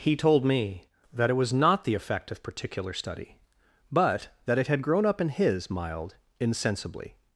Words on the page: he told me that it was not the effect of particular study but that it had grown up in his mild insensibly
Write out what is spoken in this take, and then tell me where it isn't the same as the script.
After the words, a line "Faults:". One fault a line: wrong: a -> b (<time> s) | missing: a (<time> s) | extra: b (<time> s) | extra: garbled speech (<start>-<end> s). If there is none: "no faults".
he told me that it was not the effect of particular study but that it had grown up in his mild insensibly
Faults:
no faults